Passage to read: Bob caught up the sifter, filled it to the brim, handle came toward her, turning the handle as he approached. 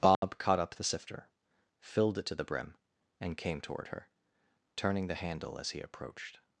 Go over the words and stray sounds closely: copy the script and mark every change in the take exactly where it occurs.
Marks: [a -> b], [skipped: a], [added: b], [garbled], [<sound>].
Bob [dropout] caught up the sifter, filled it to the brim, [handle -> and] came toward her, turning the handle as he approached.